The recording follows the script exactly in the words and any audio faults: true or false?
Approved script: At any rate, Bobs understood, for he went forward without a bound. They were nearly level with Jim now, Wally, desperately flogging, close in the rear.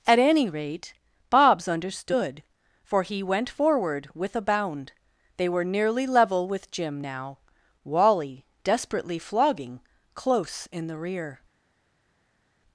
false